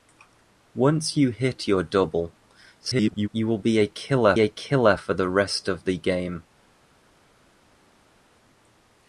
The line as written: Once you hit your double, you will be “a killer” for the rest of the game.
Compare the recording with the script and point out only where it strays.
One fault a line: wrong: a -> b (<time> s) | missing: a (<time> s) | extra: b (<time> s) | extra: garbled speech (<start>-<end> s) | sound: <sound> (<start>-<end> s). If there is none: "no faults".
extra: garbled speech (2.8-3.3 s)
extra: a killer (4.4 s)